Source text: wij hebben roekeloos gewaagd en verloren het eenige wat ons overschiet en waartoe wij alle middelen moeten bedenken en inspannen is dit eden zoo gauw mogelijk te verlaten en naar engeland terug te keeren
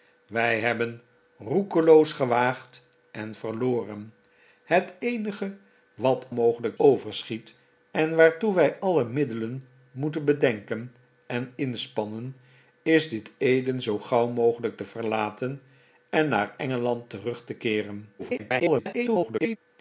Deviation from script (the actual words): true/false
true